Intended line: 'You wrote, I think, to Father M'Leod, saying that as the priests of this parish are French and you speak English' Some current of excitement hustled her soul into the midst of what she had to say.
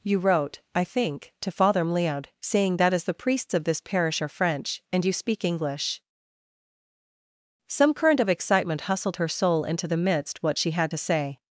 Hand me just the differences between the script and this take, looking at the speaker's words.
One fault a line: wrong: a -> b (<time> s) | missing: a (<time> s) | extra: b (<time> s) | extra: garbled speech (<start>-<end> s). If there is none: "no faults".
missing: of (10.4 s)